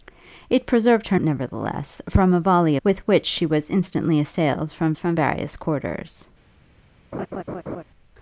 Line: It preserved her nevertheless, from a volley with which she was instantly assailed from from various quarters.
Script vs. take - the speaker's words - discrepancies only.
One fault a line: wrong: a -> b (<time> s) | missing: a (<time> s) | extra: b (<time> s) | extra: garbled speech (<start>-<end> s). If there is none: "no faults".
no faults